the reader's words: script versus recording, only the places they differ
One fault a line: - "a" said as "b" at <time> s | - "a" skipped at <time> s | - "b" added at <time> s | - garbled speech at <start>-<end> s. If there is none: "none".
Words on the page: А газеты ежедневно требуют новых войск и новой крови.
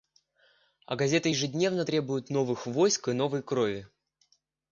none